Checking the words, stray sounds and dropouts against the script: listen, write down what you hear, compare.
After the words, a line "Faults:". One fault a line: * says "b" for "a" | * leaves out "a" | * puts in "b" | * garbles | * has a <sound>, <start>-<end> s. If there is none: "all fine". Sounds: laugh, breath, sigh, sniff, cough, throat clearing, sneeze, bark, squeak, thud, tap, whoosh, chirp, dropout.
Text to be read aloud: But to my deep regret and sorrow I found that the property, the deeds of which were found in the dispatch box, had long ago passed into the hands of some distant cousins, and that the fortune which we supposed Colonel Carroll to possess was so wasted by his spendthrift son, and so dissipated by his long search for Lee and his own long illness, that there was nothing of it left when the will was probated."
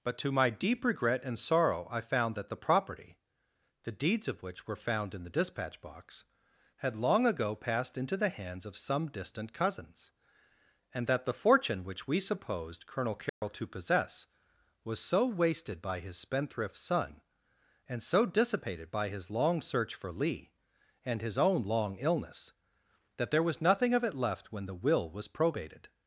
But to my deep regret and sorrow I found that the property, the deeds of which were found in the dispatch box, had long ago passed into the hands of some distant cousins, and that the fortune which we supposed Colonel Carroll to possess was so wasted by his spendthrift son, and so dissipated by his long search for Lee and his own long illness, that there was nothing of it left when the will was probated."
Faults:
* has a dropout, 13.3-13.4 s